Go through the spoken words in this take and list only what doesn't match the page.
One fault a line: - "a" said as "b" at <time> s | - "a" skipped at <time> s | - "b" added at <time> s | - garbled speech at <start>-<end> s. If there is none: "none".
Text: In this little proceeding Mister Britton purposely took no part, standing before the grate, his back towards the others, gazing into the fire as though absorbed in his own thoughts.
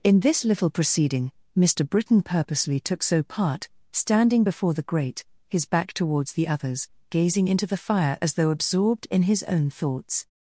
- "no" said as "so" at 3.0 s